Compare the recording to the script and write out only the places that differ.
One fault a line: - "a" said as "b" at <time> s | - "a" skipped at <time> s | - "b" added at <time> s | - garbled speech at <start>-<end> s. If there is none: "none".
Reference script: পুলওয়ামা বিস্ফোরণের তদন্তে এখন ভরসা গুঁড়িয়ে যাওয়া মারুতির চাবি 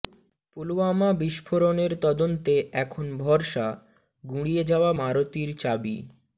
none